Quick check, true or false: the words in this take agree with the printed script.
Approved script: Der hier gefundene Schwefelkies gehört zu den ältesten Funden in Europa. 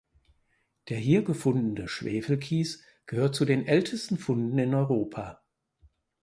true